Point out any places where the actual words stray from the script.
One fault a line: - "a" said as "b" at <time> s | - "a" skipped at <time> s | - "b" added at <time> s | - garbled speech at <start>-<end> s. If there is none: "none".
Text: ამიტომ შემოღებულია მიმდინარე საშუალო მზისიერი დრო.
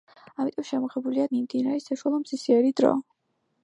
none